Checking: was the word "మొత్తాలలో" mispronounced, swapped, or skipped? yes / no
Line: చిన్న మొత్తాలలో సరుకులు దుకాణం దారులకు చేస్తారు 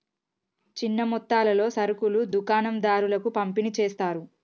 no